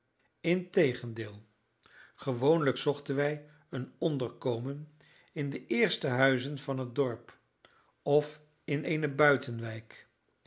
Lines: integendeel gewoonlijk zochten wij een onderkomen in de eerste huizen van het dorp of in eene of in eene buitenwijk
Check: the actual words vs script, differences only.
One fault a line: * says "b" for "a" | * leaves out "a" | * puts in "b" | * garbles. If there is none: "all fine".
* leaves out "of in eene"